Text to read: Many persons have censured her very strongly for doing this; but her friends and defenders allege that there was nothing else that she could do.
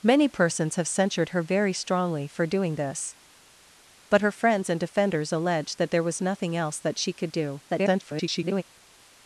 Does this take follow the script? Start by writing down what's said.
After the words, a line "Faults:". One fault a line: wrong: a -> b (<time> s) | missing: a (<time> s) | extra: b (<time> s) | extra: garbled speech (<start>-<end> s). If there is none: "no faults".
Many persons have censured her very strongly for doing this; but her friends and defenders allege that there was nothing else that she could do. [garbled]
Faults:
extra: garbled speech (7.7-8.6 s)